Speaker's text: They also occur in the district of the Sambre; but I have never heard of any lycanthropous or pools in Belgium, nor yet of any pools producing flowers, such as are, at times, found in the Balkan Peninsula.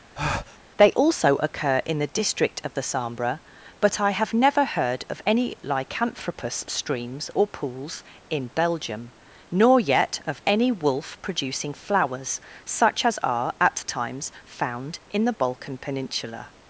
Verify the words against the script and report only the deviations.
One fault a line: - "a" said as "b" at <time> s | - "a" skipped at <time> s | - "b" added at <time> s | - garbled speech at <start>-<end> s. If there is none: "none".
- "streams" added at 6.7 s
- "pools" said as "wolf" at 10.7 s